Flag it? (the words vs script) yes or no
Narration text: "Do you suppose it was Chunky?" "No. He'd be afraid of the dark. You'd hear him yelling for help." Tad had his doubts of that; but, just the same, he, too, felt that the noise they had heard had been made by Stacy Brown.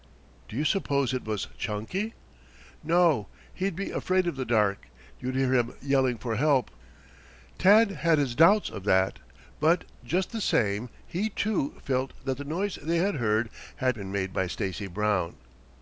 no